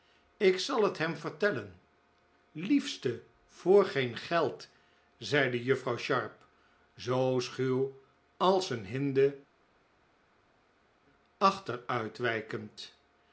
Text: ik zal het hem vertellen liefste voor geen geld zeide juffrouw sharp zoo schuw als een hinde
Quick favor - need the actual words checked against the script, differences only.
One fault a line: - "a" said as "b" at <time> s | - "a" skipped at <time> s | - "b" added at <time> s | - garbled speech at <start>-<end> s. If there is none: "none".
none